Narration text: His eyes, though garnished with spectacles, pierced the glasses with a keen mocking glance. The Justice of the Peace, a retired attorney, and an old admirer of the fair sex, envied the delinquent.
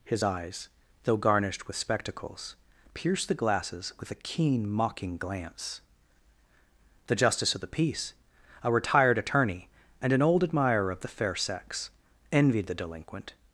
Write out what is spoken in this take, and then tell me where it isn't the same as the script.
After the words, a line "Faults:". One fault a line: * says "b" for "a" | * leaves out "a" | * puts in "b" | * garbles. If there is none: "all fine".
His eyes, though garnished with spectacles, pierced the glasses with a keen mocking glance. The Justice of the Peace, a retired attorney, and an old admirer of the fair sex, envied the delinquent.
Faults:
all fine